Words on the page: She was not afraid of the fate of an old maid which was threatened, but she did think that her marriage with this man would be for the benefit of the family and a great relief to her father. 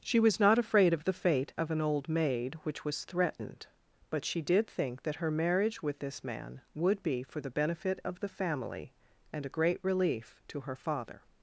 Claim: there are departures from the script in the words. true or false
false